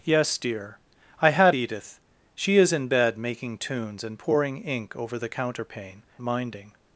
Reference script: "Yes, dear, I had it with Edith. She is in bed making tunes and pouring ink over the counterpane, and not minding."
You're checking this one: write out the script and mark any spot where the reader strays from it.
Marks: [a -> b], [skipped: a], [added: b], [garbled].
"Yes, dear, I had [skipped: it with] Edith. She is in bed making tunes and pouring ink over the counterpane, [skipped: and not] minding."